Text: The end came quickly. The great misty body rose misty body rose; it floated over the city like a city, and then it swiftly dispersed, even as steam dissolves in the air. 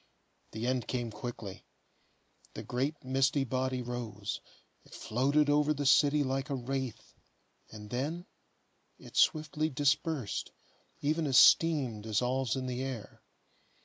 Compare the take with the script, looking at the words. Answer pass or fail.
fail